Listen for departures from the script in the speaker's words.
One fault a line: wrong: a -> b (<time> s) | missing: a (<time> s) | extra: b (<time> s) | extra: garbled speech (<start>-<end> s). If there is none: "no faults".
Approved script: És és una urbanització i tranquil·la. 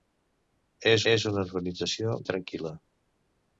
no faults